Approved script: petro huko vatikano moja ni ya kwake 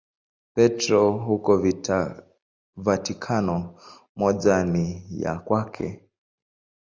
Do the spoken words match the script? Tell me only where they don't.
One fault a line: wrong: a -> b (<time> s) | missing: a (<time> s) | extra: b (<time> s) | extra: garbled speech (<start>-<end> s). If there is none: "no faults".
no faults